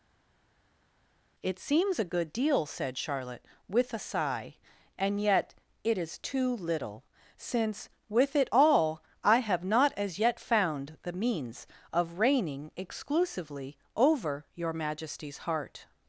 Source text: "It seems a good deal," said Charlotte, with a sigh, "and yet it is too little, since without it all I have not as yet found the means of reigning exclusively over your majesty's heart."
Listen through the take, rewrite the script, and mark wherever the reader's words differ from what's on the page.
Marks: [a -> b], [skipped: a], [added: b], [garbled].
"It seems a good deal," said Charlotte, with a sigh, "and yet it is too little, since [without -> with] it all I have not as yet found the means of reigning exclusively over your majesty's heart."